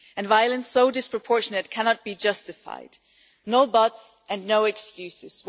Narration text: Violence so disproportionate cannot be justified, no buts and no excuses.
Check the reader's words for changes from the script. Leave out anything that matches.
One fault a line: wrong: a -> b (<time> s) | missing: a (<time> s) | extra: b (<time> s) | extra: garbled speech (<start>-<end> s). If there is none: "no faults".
no faults